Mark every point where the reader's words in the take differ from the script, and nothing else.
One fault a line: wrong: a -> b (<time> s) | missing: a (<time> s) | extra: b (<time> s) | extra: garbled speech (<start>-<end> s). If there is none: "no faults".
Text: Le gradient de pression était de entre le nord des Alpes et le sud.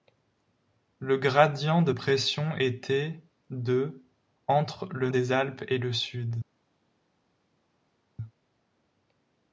missing: nord (5.1 s)